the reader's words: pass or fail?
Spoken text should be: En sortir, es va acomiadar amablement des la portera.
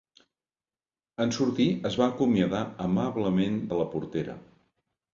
fail